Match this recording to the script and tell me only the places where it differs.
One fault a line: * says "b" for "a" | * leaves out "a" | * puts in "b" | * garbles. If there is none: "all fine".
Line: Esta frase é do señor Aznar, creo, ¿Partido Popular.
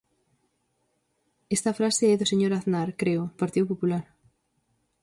all fine